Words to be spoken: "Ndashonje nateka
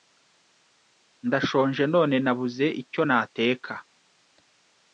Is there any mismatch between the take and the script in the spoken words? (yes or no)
yes